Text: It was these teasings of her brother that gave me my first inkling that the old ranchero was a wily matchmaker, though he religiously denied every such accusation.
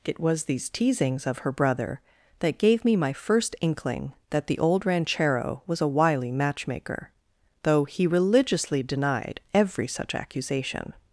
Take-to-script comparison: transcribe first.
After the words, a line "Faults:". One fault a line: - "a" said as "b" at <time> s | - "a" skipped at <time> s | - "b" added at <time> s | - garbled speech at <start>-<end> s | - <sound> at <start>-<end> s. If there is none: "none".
It was these teasings of her brother that gave me my first inkling that the old ranchero was a wily matchmaker, though he religiously denied every such accusation.
Faults:
none